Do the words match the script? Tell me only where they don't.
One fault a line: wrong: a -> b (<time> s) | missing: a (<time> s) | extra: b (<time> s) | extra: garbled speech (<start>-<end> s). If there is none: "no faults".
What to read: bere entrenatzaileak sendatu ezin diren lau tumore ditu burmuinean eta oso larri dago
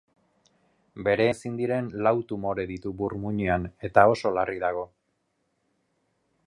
missing: entrenatzaileak sendatu (1.2 s)